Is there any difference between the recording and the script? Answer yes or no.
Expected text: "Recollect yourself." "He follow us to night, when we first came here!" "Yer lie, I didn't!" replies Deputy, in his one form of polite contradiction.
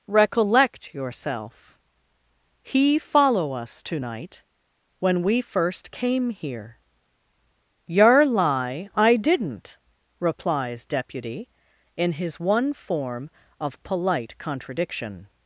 no